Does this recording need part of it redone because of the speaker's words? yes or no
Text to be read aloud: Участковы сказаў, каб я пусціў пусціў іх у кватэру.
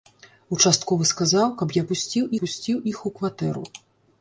no